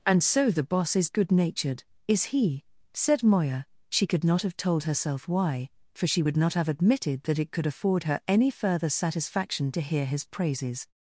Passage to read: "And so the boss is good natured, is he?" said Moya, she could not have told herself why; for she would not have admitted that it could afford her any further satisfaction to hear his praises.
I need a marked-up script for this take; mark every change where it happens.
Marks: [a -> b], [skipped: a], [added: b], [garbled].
"And so the boss is good natured, is he?" said Moya, she could not have told herself why; for she would not have admitted that it could afford her any further satisfaction to hear his praises.